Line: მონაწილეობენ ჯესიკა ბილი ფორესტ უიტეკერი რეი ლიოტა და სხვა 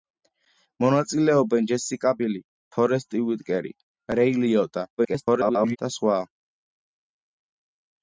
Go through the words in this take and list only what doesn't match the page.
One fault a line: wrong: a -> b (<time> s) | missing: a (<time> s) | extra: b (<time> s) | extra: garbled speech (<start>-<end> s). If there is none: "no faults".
extra: garbled speech (5.0-5.8 s)